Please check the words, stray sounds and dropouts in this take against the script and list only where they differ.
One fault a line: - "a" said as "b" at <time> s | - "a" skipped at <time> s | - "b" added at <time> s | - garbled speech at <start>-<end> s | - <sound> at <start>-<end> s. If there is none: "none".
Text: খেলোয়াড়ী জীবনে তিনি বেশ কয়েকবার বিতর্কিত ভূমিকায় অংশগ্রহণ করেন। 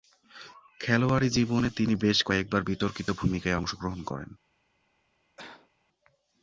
- cough at 5.4-5.7 s